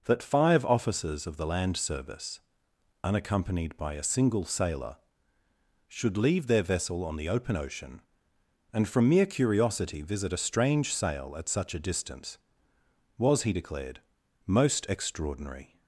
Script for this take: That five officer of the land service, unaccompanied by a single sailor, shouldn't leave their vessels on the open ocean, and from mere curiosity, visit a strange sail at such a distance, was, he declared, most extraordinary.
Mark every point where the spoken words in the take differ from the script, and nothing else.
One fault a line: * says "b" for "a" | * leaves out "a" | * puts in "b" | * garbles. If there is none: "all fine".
* says "officers" for "officer"
* says "should" for "shouldn't"
* says "vessel" for "vessels"